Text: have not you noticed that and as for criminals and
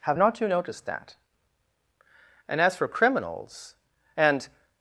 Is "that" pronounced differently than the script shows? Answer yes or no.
no